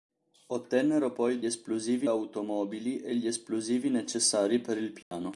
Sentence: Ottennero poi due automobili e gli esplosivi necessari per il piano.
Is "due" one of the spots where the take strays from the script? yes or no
yes